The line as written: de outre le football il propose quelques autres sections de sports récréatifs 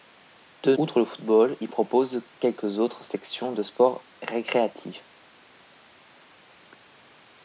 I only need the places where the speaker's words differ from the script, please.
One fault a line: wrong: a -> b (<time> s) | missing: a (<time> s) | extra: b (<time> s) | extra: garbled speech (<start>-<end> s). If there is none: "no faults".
no faults